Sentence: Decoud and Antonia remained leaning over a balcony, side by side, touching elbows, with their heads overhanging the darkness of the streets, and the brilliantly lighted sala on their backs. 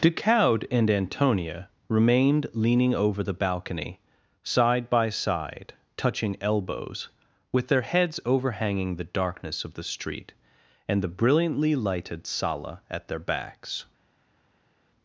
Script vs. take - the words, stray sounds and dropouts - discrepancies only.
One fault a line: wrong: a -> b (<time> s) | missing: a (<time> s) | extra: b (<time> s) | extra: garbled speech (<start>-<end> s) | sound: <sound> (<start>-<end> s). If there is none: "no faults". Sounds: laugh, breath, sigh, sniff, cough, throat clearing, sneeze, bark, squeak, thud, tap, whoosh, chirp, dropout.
wrong: a -> the (3.2 s)
wrong: streets -> street (9.8 s)
wrong: on -> at (12.9 s)